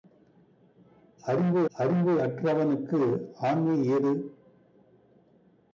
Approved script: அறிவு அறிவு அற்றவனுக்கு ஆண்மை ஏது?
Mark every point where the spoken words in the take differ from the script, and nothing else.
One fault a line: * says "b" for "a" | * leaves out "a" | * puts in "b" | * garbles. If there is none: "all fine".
all fine